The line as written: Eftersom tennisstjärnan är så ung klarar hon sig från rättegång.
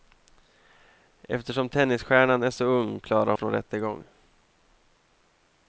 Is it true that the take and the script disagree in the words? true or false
true